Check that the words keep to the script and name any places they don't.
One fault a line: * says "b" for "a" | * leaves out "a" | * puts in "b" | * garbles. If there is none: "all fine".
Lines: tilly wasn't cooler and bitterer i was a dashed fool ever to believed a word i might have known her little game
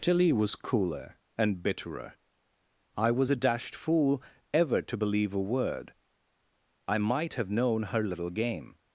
* says "was" for "wasn't"
* says "believe" for "believed"